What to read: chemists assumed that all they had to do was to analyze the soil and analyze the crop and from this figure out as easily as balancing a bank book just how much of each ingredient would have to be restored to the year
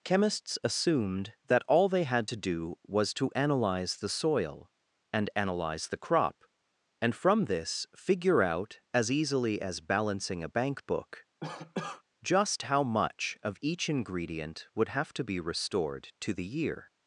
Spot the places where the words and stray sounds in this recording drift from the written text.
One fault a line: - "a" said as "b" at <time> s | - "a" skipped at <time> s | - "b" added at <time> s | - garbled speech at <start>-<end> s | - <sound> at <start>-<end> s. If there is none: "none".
- cough at 11.4-12.0 s